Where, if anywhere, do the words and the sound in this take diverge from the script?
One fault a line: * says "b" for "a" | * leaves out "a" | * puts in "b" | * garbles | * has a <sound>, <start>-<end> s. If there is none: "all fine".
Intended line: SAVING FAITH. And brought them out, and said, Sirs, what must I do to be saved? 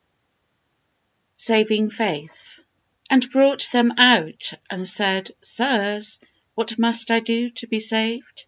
all fine